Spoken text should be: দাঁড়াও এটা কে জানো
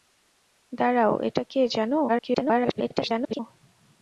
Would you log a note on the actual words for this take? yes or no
yes